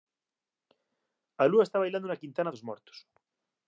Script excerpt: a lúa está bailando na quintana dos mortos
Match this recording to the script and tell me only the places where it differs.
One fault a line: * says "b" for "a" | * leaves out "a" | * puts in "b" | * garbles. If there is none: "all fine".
all fine